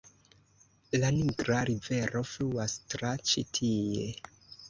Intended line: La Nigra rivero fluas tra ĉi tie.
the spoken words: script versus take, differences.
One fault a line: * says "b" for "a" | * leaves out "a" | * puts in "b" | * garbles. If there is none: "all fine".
all fine